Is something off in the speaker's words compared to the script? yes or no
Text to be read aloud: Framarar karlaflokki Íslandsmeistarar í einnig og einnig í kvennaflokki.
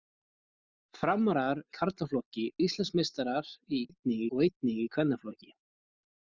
no